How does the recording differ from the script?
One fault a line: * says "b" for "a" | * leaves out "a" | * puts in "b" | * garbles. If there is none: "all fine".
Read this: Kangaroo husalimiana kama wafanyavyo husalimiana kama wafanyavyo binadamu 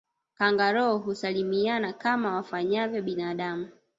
* leaves out "husalimiana kama wafanyavyo"